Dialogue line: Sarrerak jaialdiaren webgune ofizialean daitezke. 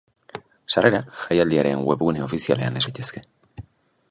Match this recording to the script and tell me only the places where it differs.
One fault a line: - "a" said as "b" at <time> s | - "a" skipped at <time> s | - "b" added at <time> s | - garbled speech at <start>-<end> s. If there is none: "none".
none